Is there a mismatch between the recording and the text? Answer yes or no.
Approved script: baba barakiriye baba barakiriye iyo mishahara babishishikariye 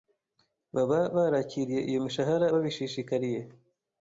yes